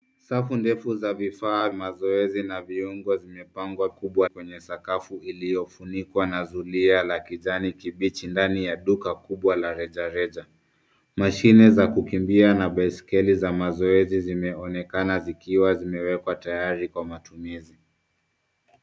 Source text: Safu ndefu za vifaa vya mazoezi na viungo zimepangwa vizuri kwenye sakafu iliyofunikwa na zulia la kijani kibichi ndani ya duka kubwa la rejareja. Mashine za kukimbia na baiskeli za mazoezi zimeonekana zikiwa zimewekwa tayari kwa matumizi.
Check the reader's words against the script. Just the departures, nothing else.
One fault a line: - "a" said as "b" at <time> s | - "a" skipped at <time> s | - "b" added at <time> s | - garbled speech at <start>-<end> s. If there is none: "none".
- "vya" skipped at 1.7 s
- "vizuri" said as "kubwa" at 3.9 s